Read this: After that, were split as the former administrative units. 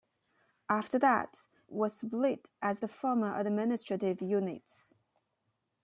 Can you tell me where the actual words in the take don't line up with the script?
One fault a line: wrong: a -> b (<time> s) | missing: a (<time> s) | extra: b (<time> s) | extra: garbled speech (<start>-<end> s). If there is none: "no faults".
no faults